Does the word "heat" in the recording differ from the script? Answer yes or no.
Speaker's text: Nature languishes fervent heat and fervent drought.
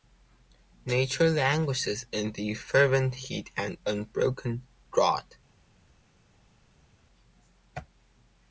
no